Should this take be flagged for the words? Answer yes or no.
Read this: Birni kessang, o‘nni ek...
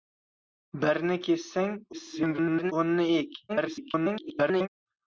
yes